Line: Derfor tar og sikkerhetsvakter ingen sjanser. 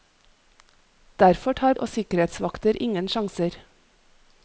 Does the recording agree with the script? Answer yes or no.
yes